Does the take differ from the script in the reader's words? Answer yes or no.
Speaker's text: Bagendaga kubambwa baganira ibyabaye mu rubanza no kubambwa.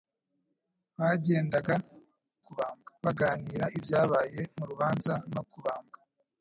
no